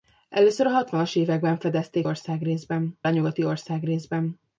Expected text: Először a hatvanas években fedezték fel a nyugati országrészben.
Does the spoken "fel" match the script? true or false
false